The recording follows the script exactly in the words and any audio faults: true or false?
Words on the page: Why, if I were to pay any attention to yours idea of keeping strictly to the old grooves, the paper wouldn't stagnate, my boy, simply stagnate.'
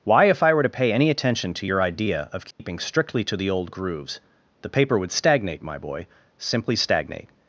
false